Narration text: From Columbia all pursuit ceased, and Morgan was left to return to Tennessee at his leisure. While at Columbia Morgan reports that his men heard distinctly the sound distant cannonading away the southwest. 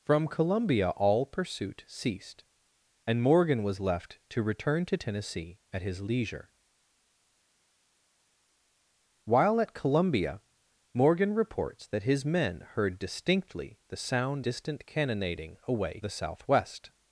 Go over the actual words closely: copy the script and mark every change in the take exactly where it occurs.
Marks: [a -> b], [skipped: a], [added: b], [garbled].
From Columbia all pursuit ceased, and Morgan was left to return to Tennessee at his leisure. While at Columbia Morgan reports that his men heard distinctly the sound distant cannonading away the southwest.